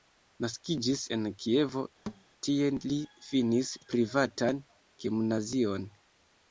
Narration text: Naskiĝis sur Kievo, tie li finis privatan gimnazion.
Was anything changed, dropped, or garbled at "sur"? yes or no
yes